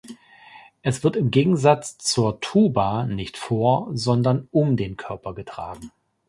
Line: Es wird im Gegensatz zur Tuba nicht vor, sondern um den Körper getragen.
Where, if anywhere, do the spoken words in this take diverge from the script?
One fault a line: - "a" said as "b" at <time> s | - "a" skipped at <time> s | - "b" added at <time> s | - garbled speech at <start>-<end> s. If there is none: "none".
none